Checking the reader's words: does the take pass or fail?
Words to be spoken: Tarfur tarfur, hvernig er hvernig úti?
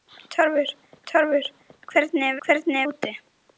pass